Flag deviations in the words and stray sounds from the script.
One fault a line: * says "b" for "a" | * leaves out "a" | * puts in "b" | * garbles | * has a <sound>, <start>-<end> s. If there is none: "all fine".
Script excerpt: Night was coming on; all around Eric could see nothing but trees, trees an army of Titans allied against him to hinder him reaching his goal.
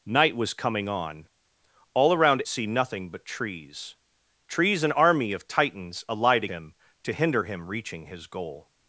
* leaves out "Eric could"
* leaves out "against"